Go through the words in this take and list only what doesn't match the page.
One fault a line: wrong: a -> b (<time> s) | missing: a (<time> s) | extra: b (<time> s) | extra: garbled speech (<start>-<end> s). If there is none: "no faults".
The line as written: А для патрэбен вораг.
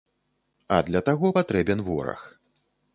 extra: таго (1.1 s)